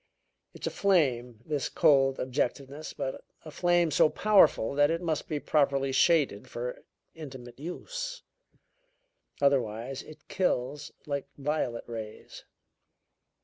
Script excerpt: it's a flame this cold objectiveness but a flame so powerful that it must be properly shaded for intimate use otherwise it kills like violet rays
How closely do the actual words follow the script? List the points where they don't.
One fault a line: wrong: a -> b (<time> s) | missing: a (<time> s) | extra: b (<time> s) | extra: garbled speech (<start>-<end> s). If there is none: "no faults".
no faults